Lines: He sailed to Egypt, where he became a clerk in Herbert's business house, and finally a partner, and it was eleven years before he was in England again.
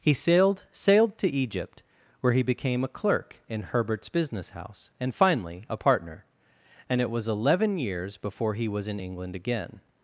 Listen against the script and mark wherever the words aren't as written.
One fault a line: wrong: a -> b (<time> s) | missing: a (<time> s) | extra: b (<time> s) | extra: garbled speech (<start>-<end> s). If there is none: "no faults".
extra: sailed (0.7 s)